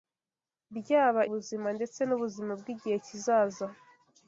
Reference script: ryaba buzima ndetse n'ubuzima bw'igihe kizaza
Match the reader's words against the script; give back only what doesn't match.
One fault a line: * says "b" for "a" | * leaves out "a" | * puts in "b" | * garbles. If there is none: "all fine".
all fine